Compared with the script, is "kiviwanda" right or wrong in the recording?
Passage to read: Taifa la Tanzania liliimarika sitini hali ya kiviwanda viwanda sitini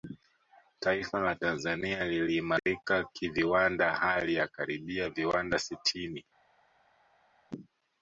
wrong